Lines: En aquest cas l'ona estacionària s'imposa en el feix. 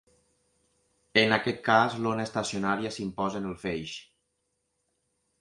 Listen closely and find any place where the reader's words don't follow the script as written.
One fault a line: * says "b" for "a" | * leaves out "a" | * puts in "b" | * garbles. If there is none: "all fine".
all fine